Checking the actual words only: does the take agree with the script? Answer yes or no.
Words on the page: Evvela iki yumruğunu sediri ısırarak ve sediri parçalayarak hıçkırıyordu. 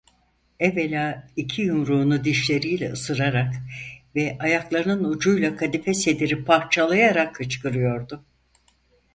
no